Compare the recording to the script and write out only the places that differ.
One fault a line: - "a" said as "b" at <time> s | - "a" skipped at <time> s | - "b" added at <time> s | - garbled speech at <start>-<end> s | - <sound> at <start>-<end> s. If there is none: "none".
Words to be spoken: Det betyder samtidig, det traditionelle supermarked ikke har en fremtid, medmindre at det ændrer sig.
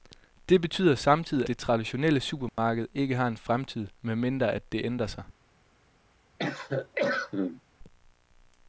- dropout at 2.5-2.6 s
- cough at 6.4-7.6 s